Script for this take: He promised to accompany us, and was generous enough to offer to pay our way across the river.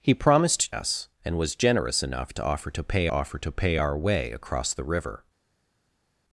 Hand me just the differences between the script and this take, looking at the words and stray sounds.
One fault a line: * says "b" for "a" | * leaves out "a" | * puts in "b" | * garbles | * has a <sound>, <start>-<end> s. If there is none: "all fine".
* leaves out "to accompany"
* puts in "offer to pay"